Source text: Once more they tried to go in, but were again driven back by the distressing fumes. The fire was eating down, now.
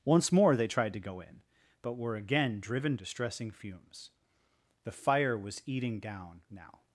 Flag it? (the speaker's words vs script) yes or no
yes